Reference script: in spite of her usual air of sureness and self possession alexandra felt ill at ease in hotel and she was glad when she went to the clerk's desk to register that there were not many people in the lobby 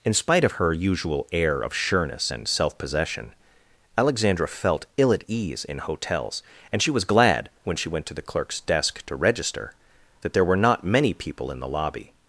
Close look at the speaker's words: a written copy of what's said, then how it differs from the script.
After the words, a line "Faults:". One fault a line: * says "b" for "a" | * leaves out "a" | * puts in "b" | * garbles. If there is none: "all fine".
in spite of her usual air of sureness and self possession alexandra felt ill at ease in hotels and she was glad when she went to the clerk's desk to register that there were not many people in the lobby
Faults:
* says "hotels" for "hotel"